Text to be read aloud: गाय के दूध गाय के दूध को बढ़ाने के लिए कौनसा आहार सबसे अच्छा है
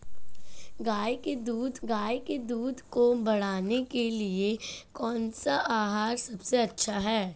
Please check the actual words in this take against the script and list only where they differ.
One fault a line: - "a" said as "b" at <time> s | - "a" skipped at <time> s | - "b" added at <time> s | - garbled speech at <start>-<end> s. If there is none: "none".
none